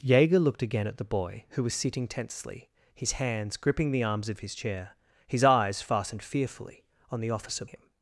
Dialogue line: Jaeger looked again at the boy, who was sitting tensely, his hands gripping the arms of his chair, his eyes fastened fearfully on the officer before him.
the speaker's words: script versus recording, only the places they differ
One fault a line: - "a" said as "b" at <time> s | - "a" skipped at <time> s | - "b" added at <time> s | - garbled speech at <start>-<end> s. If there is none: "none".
- "before" skipped at 7.7 s